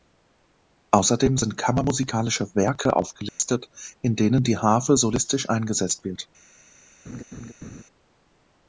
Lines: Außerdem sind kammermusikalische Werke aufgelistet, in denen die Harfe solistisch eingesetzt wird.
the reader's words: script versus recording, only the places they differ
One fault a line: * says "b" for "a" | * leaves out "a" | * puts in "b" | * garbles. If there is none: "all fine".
all fine